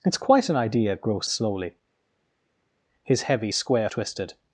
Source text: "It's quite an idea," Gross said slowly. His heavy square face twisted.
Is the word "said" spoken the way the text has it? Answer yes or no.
no